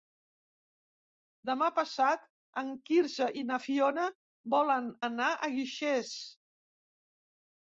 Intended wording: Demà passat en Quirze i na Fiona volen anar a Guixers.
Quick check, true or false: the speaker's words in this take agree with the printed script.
true